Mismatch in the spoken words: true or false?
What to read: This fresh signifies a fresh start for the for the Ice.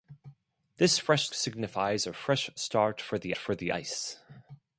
false